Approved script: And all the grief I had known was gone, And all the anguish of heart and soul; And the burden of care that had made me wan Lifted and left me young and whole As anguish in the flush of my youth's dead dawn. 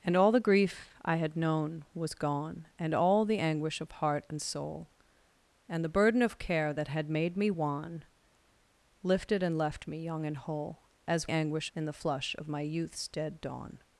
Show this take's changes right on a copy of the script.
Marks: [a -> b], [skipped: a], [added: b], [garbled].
And all the grief I had known was gone, And all the anguish of heart and soul; And the burden of care that had made me wan Lifted and left me young and whole As anguish in the flush of my youth's dead dawn.